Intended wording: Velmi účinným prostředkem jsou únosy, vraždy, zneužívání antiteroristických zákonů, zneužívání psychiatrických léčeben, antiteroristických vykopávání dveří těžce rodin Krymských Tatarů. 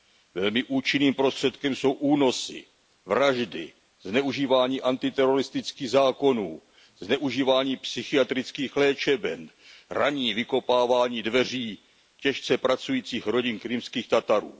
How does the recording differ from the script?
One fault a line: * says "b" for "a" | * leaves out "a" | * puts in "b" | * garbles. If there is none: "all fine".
* says "ranní" for "antiteroristických"
* puts in "pracujících"